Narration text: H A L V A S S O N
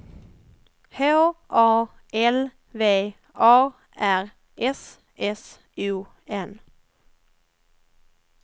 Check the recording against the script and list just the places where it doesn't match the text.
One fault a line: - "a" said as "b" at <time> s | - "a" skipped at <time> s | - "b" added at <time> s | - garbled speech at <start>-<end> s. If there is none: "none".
- "R" added at 4.0 s